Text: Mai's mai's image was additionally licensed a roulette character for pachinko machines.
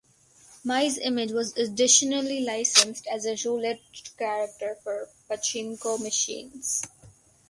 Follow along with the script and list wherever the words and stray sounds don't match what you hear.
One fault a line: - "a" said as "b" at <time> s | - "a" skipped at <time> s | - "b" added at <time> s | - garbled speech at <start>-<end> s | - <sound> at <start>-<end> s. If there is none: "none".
- "mai's" skipped at 1.0 s
- "as" added at 3.0 s